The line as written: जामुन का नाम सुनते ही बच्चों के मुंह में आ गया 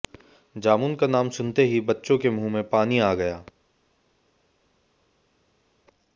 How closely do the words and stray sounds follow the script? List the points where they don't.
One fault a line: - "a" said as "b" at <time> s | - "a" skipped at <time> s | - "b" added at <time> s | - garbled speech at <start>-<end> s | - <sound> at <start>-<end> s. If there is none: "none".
- "पानी" added at 2.7 s